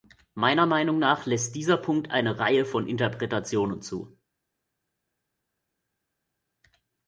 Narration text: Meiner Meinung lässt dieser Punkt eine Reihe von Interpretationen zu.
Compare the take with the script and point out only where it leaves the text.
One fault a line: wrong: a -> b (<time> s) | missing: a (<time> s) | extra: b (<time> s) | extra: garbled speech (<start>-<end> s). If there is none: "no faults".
extra: nach (1.0 s)